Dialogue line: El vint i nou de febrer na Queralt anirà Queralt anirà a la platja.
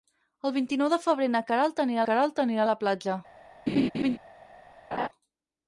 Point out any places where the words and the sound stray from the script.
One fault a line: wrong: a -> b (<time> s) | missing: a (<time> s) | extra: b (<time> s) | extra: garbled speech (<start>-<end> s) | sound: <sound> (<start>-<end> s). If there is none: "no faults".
sound: laugh (3.7-4.2 s)
sound: laugh (4.9-5.1 s)